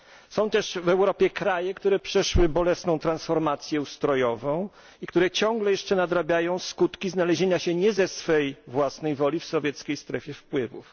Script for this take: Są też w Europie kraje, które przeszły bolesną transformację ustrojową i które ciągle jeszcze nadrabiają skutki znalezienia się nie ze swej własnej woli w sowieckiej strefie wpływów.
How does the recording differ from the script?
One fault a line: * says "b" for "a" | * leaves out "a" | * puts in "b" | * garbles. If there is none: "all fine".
all fine